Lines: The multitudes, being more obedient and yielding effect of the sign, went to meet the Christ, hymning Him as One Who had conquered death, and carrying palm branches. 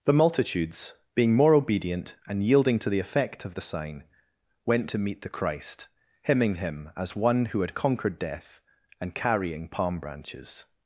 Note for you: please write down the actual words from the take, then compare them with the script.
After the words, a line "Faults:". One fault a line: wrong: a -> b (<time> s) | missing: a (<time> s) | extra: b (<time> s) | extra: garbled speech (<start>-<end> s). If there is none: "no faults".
The multitudes, being more obedient and yielding to the effect of the sign, went to meet the Christ, hymning Him as One Who had conquered death, and carrying palm branches.
Faults:
extra: to the (2.8 s)